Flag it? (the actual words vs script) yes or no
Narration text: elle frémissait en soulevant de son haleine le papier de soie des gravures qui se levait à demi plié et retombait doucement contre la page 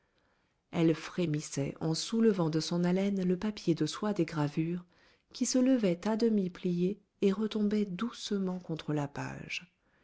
no